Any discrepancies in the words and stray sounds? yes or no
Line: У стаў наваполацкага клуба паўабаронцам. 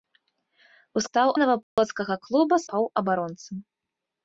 yes